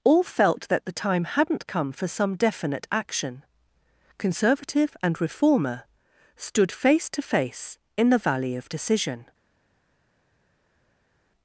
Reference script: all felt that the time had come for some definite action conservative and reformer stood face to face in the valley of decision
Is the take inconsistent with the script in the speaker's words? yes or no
yes